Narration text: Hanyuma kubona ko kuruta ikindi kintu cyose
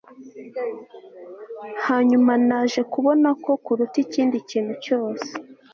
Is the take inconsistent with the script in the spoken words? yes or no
yes